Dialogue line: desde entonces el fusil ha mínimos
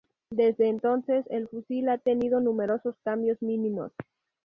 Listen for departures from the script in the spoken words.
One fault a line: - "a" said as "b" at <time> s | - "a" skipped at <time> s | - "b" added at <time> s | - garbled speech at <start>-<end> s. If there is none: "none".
- "tenido numerosos cambios" added at 2.0 s